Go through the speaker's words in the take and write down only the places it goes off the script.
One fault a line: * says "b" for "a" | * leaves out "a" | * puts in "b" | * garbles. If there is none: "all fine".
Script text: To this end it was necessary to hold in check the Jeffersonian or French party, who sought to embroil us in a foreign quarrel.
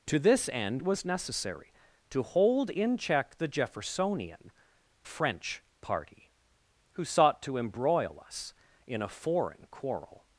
* leaves out "it"
* leaves out "or"